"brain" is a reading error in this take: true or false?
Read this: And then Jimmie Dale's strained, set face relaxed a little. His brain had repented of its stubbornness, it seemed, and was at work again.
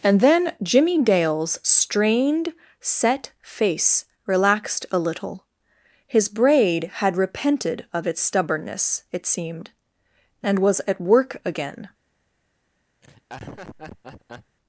true